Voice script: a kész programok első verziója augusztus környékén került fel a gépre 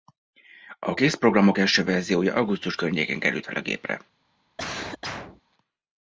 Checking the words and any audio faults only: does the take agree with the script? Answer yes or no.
no